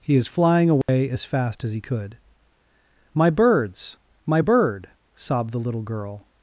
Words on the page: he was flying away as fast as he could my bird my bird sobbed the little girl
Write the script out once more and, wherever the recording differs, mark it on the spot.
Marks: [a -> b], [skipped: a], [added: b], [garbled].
he [was -> is] flying away as fast as he could my [bird -> birds] my bird sobbed the little girl